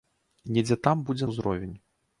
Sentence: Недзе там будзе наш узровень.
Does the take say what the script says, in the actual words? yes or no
no